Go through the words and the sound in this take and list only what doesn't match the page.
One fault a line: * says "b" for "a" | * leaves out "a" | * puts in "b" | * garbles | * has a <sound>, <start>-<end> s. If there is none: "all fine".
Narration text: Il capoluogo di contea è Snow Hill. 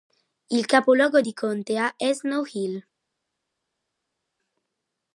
all fine